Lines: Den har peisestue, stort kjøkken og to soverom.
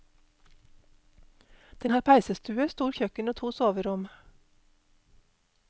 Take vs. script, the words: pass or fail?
pass